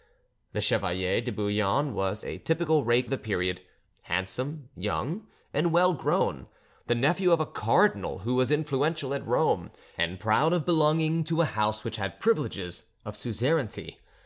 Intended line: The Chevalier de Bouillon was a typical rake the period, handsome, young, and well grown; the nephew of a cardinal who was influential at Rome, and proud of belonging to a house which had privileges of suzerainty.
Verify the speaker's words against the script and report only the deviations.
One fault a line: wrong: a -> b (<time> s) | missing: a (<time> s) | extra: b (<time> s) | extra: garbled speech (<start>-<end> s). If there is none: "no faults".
no faults